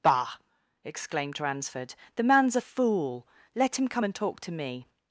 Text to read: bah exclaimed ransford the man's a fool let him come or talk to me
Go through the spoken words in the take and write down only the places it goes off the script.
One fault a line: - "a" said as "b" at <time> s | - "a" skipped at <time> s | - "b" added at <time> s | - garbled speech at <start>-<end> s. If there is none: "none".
- "or" said as "and" at 4.0 s